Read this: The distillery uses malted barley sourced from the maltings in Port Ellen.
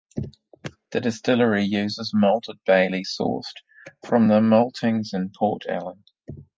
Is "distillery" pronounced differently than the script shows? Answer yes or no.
no